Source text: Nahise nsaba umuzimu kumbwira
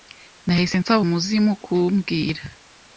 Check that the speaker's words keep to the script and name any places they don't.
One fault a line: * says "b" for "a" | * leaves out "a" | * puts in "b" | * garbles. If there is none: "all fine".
all fine